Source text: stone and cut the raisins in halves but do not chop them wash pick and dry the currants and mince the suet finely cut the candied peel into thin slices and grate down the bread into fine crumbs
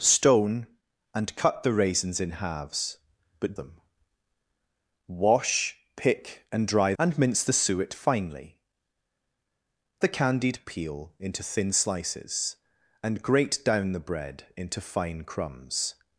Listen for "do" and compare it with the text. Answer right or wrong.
wrong